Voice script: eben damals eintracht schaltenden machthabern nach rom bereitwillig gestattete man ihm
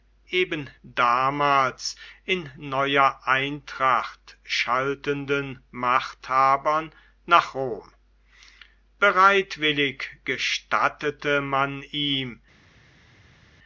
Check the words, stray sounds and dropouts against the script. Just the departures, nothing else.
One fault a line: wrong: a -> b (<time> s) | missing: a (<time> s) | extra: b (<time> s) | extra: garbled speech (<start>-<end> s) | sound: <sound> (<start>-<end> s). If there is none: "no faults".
extra: in neuer (2.2 s)